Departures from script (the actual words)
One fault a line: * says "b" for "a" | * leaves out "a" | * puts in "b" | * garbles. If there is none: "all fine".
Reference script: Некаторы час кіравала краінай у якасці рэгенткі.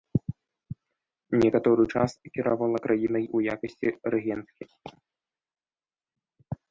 all fine